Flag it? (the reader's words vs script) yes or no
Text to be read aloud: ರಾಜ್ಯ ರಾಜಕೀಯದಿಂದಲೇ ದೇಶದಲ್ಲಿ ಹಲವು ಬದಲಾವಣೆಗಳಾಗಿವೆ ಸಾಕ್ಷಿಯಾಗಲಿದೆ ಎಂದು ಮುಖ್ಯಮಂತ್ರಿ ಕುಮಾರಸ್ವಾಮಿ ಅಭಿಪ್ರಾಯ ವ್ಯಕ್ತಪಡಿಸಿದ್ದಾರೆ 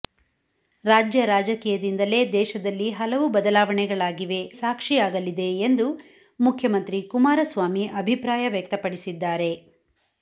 no